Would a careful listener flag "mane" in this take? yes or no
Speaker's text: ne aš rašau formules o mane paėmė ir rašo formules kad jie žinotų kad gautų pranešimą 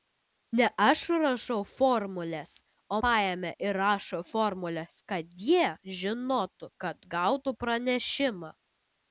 yes